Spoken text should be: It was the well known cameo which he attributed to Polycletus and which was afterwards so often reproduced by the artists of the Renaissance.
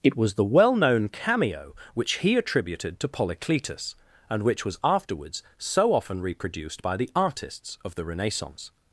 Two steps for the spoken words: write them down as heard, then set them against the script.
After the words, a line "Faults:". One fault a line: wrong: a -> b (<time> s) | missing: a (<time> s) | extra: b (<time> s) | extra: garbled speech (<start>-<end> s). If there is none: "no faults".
It was the well known cameo which he attributed to Polycletus and which was afterwards so often reproduced by the artists of the Renaissance.
Faults:
no faults